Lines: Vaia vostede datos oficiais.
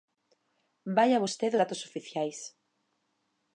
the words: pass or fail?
pass